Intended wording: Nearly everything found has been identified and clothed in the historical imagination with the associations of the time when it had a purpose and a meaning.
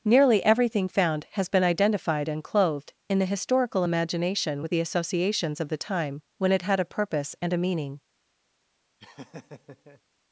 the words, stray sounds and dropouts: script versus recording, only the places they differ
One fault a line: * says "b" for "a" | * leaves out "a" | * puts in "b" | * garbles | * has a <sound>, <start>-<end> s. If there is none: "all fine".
* has a laugh, 9.0-10.0 s